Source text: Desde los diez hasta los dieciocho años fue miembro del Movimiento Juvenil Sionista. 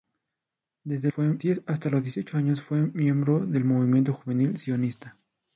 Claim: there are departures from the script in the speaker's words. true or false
true